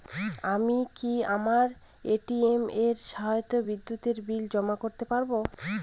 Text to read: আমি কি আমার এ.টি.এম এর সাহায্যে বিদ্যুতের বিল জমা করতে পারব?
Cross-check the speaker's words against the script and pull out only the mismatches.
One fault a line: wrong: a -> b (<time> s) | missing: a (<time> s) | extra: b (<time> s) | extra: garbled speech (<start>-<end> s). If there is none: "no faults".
no faults